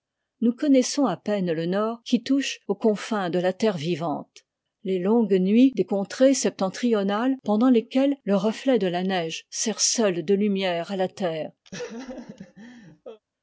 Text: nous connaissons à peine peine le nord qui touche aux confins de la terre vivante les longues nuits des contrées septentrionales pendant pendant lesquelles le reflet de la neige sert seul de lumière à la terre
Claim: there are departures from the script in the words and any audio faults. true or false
true